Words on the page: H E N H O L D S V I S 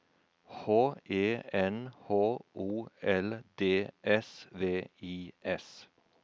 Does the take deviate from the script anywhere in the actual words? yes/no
no